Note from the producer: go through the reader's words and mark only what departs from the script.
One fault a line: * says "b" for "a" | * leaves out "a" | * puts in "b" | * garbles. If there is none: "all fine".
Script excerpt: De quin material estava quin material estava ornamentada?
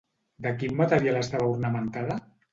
* leaves out "quin material estava"